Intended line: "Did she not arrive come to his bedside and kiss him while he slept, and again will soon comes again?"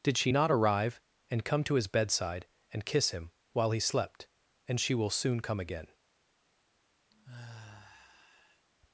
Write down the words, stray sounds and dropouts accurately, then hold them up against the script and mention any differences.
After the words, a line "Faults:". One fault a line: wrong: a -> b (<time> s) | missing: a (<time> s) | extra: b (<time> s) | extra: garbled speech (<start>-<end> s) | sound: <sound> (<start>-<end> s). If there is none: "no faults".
"Did she not arrive and come to his bedside and kiss him while he slept, and she will soon come again?"
Faults:
extra: and (1.3 s)
wrong: again -> she (4.8 s)
wrong: comes -> come (5.4 s)
sound: sigh (7.1-8.7 s)